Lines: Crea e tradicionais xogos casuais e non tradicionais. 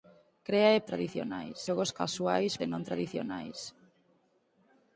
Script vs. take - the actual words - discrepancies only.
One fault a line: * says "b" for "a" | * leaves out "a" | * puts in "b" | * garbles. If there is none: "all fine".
all fine